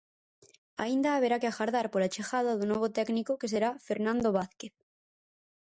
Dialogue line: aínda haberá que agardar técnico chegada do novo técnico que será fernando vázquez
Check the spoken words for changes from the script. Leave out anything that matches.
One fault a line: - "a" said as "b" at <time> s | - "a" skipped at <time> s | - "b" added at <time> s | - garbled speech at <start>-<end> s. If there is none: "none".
- "técnico" said as "pola" at 1.9 s